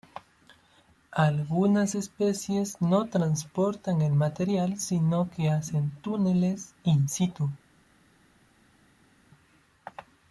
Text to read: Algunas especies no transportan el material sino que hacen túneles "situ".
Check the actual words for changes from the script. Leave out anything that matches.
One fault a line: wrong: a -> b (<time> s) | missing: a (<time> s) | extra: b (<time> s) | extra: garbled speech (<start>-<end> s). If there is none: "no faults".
extra: in (6.8 s)